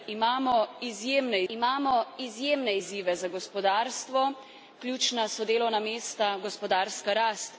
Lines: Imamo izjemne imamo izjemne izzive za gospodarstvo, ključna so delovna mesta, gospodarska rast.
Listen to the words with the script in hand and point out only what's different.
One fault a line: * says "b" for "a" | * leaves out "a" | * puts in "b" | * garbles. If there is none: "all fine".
all fine